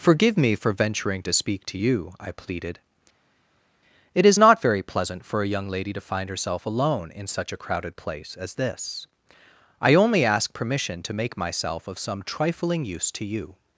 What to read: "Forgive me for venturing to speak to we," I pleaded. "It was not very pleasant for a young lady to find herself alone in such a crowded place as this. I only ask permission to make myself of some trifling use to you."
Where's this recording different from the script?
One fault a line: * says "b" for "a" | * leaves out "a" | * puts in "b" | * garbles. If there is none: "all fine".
* says "you" for "we"
* says "is" for "was"